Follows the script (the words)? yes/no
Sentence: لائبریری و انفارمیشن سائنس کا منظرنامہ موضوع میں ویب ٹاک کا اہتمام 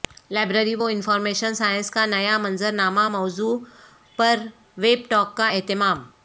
no